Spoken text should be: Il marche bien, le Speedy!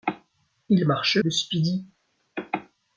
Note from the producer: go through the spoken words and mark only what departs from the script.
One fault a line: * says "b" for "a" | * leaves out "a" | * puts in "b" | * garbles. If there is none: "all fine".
* leaves out "bien"